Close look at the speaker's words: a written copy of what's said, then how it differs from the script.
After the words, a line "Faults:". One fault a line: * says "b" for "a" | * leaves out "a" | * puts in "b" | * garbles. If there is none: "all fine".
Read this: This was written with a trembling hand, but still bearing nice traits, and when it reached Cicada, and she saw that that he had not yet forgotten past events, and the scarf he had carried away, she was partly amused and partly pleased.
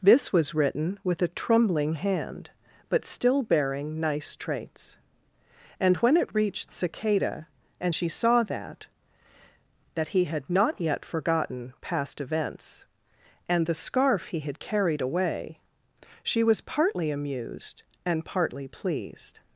This was written with a trembling hand, but still bearing nice traits, and when it reached Cicada, and she saw that that he had not yet forgotten past events, and the scarf he had carried away, she was partly amused and partly pleased.
Faults:
all fine